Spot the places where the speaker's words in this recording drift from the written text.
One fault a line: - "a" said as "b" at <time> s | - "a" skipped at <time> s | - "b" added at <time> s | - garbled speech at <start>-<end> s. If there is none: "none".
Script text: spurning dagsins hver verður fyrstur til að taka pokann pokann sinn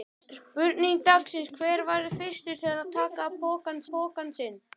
none